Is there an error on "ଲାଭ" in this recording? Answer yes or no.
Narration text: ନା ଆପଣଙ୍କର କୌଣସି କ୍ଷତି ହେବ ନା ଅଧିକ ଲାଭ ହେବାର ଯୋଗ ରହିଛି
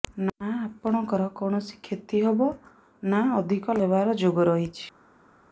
yes